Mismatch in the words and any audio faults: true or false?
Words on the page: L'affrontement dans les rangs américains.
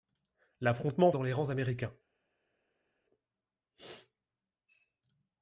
false